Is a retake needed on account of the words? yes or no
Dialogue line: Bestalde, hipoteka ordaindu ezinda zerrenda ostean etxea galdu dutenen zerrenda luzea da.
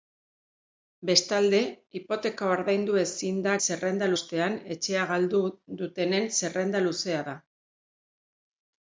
no